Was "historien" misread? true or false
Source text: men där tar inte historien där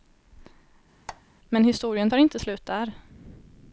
true